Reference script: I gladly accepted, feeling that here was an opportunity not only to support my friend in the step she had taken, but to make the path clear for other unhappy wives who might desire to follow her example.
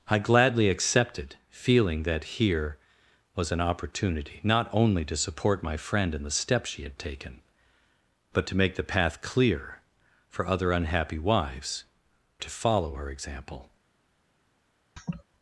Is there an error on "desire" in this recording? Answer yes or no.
yes